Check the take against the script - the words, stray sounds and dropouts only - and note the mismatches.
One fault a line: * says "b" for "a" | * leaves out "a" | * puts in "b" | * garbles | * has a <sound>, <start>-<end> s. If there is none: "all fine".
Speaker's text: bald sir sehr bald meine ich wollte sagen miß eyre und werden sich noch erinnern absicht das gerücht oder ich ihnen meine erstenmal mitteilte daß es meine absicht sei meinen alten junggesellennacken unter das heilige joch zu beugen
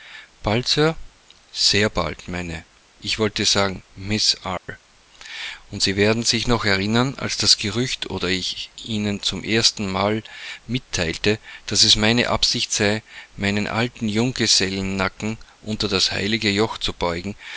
* has a dropout, 4.6-4.7 s
* puts in "sie"
* says "als" for "absicht"
* says "zum" for "meine"